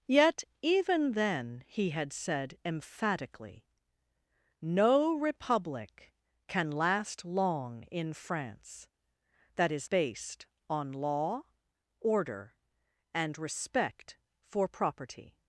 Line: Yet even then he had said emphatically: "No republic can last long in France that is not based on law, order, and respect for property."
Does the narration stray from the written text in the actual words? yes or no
yes